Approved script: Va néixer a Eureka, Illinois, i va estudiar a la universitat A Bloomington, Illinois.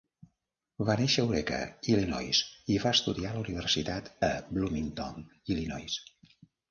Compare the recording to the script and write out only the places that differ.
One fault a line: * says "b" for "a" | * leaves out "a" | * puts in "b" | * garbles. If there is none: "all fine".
all fine